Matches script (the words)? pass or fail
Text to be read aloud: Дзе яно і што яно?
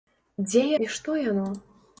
fail